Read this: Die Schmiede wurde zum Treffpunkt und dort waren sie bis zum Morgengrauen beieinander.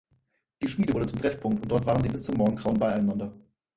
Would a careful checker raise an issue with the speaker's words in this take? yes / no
no